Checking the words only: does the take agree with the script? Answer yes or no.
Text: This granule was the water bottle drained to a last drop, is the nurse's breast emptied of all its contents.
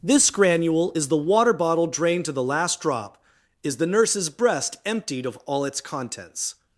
no